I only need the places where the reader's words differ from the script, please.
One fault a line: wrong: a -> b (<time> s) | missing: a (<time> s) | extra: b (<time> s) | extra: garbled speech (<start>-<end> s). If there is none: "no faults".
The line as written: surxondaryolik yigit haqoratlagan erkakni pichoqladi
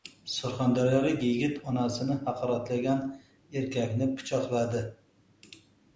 extra: onasini (1.7 s)